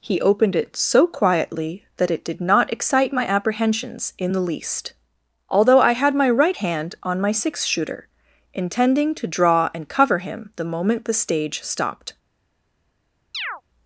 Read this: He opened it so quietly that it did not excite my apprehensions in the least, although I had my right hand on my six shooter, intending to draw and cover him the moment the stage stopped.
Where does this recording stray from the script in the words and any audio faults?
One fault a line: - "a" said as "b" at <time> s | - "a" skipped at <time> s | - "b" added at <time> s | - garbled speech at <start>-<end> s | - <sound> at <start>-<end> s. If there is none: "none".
- chirp at 13.3-13.6 s